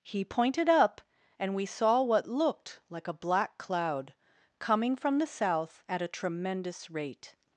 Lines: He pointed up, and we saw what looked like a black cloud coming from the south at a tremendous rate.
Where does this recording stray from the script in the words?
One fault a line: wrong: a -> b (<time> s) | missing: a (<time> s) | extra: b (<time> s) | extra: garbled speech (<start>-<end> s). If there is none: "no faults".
no faults